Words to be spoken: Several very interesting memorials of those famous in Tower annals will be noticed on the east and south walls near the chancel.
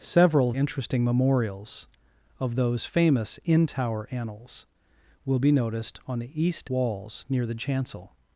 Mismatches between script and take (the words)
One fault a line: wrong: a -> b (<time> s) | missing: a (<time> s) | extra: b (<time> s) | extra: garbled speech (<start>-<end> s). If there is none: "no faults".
missing: very (0.5 s)
missing: and south (6.7 s)